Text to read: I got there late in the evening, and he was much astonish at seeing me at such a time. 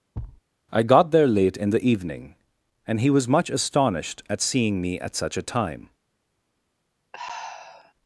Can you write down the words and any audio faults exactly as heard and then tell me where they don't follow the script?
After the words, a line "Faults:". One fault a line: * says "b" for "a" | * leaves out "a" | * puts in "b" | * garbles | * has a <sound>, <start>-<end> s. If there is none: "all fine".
I got there late in the evening, and he was much astonished at seeing me at such a time.
Faults:
* has a thud, 0.1-0.4 s
* says "astonished" for "astonish"
* has a sigh, 7.1-7.9 s